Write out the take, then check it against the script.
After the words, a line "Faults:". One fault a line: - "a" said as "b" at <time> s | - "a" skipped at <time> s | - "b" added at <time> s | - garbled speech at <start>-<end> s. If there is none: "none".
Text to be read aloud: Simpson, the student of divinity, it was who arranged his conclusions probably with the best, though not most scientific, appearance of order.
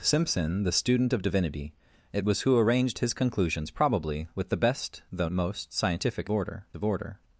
Simpson, the student of divinity, it was who arranged his conclusions probably with the best, though most scientific, order of order.
Faults:
- "not" skipped at 5.3 s
- "appearance" said as "order" at 6.3 s